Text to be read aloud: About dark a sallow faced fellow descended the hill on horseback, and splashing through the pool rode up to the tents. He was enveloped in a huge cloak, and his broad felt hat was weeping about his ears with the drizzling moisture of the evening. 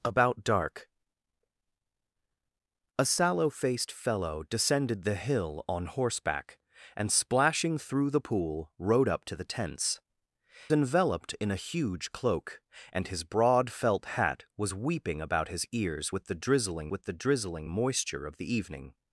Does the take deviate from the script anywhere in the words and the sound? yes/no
yes